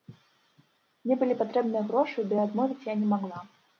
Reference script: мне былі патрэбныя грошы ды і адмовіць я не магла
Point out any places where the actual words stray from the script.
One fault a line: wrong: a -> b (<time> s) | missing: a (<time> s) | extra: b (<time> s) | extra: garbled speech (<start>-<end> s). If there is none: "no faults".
no faults